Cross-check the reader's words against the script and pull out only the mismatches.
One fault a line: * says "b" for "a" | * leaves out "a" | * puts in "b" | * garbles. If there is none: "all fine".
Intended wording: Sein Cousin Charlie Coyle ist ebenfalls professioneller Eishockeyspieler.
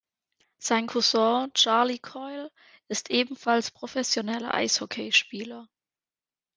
all fine